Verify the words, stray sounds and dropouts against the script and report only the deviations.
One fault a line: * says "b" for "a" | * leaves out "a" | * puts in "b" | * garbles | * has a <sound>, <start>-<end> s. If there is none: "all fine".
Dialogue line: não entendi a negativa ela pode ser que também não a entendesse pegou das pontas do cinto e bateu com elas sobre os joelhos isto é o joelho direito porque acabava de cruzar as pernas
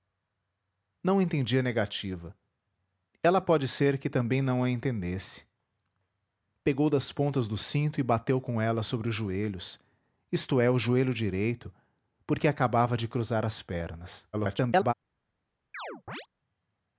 * garbles
* has a chirp, 15.7-16.3 s